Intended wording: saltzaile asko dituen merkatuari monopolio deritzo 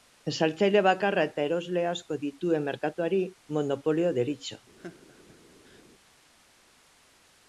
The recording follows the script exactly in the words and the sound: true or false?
false